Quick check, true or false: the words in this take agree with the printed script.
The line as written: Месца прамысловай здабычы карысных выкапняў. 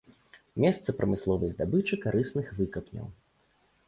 true